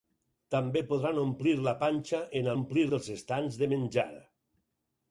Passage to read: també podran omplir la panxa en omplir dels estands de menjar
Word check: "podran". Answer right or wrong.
right